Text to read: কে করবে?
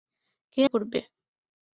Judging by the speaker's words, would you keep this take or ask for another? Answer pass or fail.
pass